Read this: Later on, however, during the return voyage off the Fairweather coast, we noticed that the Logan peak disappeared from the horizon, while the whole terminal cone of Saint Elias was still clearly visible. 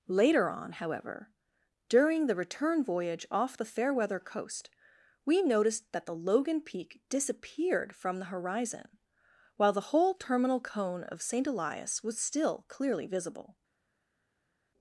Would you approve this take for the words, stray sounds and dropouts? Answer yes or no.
yes